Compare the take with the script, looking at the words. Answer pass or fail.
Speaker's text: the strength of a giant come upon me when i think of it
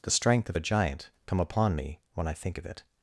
pass